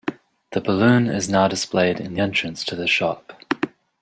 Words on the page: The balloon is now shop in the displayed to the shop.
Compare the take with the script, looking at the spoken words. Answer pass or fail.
fail